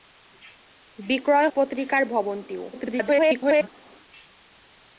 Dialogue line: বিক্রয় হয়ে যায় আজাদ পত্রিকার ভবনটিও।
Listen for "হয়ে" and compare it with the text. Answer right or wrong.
wrong